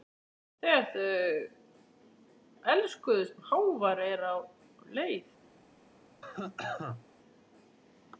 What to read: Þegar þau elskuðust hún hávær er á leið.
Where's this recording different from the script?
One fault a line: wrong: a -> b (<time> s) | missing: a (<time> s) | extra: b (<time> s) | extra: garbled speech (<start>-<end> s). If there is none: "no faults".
no faults